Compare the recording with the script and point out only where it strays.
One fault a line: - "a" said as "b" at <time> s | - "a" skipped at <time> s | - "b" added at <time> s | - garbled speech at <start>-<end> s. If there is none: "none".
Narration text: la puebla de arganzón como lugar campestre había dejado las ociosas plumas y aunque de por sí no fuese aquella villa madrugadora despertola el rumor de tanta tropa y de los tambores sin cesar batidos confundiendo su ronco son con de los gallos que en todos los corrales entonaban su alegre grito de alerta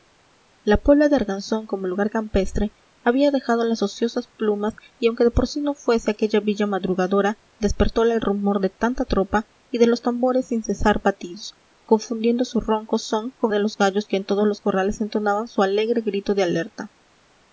none